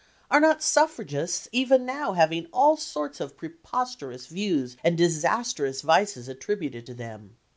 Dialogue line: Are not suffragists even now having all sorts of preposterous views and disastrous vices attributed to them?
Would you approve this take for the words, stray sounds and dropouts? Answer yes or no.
yes